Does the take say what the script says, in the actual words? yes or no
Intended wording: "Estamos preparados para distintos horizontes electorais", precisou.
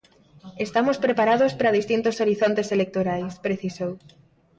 yes